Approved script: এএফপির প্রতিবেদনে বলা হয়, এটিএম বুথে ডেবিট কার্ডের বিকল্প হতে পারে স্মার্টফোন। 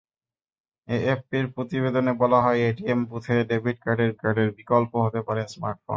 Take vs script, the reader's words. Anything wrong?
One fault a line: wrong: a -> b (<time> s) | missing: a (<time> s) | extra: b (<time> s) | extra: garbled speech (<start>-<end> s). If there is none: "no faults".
extra: কার্ডের (4.2 s)